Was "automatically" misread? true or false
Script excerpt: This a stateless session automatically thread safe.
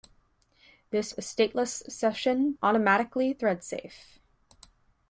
false